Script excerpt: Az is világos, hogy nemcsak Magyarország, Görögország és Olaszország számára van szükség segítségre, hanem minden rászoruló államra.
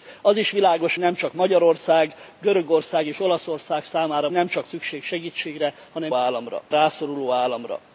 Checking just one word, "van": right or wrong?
wrong